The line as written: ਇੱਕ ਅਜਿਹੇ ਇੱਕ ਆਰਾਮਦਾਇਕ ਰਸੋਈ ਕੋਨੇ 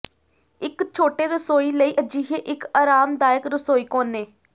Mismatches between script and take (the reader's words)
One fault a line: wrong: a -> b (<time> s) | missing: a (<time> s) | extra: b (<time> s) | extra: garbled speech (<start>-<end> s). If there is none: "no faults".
extra: ਛੋਟੇ ਰਸੋਈ ਲਈ (0.9 s)